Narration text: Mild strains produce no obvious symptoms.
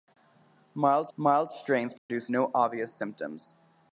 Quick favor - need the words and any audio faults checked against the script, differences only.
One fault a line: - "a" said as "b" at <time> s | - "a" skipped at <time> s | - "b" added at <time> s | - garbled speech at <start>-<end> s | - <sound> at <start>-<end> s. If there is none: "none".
- "mild" added at 1.2 s
- dropout at 2.0-2.1 s